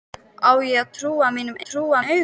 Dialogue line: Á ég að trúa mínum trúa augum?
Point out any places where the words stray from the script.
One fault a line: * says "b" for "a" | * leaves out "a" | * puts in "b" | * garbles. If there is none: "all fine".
all fine